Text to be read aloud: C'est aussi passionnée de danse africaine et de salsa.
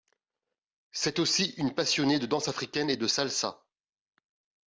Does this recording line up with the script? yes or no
no